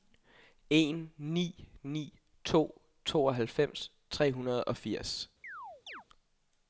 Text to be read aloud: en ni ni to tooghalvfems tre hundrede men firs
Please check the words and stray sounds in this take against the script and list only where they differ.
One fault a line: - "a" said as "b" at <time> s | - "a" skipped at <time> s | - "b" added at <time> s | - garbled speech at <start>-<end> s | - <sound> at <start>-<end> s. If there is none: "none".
- "men" said as "og" at 4.6 s
- chirp at 5.4-6.0 s